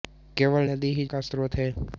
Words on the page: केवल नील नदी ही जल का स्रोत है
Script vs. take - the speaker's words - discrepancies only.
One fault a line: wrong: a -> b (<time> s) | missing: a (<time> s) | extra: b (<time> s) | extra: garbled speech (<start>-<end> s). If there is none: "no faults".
missing: नील (0.6 s)
missing: जल (1.0 s)